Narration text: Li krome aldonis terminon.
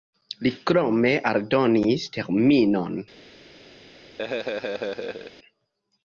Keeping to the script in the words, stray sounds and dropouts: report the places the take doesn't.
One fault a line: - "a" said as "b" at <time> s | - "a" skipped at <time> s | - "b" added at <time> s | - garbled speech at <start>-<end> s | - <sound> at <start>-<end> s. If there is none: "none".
- laugh at 4.2-5.3 s